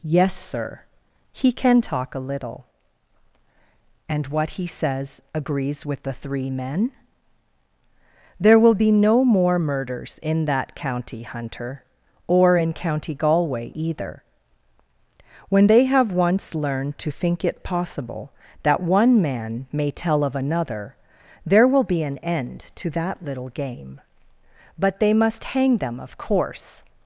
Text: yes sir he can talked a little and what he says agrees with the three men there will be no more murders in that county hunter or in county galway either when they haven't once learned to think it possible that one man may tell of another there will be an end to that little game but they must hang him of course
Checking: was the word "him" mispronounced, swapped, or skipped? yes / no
yes